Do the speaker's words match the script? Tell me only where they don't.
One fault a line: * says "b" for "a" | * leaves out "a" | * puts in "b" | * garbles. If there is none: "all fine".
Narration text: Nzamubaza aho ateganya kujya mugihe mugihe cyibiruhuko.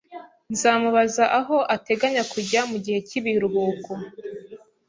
* leaves out "mugihe"